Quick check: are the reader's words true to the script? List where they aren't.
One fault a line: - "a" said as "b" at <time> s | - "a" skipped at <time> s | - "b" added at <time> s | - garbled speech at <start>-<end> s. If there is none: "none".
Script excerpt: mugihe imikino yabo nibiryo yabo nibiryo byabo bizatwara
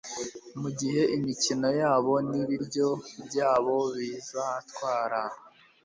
- "yabo nibiryo" skipped at 2.9 s